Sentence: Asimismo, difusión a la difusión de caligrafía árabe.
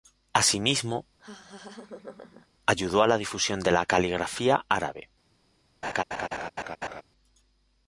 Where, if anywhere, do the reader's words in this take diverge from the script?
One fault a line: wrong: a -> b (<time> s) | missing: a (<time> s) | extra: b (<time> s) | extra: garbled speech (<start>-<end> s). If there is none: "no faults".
wrong: difusión -> ayudó (2.6 s)
extra: la (3.7 s)